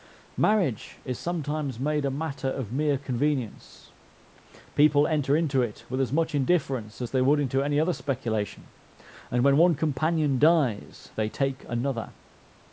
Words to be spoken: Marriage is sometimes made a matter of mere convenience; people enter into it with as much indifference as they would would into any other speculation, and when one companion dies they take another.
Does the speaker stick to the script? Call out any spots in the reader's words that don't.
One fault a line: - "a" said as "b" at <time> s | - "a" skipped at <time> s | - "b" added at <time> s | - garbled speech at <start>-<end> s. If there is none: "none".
- "would" skipped at 7.4 s